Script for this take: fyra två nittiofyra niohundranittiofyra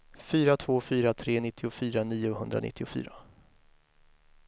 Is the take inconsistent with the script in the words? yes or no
yes